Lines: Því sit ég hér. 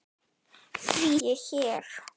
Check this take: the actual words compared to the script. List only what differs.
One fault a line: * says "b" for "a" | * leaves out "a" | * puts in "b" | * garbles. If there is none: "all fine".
* leaves out "sit"